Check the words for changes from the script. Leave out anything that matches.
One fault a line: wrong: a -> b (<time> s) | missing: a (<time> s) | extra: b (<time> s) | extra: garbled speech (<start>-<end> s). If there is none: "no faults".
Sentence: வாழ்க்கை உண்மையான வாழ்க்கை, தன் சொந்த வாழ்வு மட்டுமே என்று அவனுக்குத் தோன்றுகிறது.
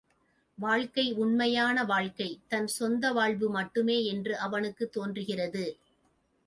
no faults